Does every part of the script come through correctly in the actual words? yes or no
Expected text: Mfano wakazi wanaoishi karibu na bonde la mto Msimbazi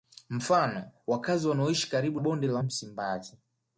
no